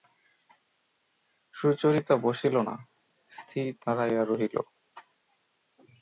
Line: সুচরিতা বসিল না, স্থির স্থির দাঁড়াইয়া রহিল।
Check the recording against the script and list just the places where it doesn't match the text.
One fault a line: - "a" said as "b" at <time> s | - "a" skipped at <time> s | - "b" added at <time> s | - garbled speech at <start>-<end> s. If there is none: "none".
- "স্থির" skipped at 3.7 s